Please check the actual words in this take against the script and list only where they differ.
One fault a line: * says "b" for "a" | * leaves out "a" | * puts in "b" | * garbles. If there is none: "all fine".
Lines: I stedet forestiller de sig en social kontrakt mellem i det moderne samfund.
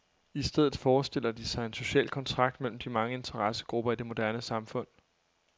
* puts in "de mange interessegrupper"